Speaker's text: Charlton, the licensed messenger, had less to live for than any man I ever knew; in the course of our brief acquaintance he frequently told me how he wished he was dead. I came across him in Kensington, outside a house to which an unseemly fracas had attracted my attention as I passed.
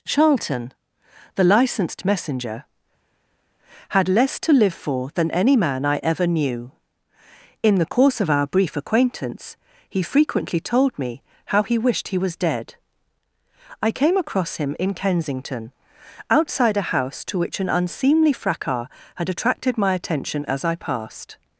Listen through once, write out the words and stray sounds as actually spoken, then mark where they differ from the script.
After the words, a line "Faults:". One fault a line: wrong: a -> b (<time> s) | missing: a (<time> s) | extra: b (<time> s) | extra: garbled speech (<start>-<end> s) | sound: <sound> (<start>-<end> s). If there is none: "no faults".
Charlton, the licensed messenger, had less to live for than any man I ever knew; in the course of our brief acquaintance he frequently told me how he wished he was dead. I came across him in Kensington, outside a house to which an unseemly fracas had attracted my attention as I passed.
Faults:
no faults